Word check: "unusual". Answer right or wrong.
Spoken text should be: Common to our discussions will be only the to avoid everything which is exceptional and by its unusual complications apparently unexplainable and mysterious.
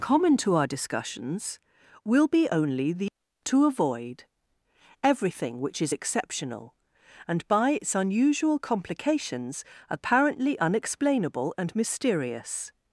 right